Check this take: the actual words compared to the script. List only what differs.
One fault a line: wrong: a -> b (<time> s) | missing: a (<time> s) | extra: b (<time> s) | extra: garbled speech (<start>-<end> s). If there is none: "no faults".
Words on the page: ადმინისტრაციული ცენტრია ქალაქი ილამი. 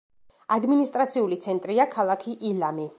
no faults